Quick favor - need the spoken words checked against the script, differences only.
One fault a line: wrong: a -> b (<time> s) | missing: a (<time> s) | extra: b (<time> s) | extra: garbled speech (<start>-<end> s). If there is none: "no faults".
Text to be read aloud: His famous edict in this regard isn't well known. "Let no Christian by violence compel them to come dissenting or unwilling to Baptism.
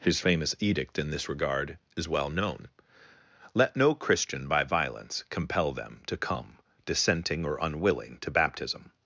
wrong: isn't -> is (1.9 s)